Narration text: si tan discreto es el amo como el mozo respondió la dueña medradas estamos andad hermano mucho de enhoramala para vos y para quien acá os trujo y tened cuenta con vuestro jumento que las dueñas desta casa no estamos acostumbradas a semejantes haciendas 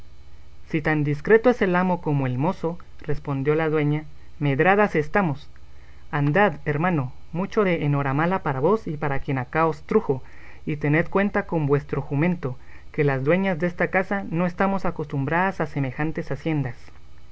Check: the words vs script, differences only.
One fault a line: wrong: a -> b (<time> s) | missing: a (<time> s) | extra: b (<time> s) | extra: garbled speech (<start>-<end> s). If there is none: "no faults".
no faults